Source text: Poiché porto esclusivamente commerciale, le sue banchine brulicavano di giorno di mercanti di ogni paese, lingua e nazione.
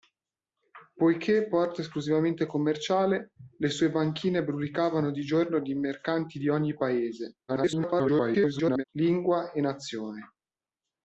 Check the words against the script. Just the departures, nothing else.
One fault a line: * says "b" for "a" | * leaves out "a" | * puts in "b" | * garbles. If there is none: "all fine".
* garbles